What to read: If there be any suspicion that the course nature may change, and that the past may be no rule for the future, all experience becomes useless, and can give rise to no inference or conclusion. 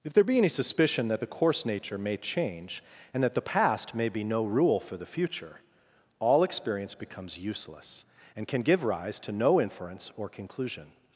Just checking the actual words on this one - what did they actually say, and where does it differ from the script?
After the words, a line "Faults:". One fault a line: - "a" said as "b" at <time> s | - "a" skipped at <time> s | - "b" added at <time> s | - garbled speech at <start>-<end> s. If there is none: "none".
If there be any suspicion that the course nature may change, and that the past may be no rule for the future, all experience becomes useless, and can give rise to no inference or conclusion.
Faults:
none